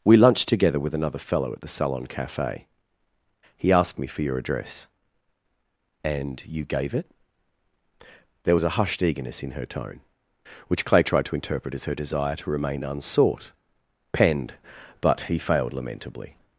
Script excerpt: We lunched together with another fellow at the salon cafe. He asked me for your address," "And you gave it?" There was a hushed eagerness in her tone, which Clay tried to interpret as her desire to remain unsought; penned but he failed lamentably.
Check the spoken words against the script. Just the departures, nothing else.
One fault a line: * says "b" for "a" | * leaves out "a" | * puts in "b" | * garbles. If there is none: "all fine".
all fine